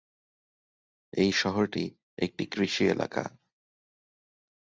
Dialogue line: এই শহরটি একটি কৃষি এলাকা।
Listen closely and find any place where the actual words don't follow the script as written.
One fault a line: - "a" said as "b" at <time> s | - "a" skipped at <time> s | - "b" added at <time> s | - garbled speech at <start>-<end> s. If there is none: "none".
none